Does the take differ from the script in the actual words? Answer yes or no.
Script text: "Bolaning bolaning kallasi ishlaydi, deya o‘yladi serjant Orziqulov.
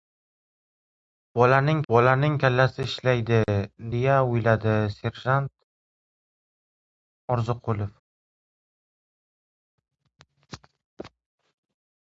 no